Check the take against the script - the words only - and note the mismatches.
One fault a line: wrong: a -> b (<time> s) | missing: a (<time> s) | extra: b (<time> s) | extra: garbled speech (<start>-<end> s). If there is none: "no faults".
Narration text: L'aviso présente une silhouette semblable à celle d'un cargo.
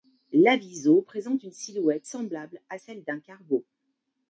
no faults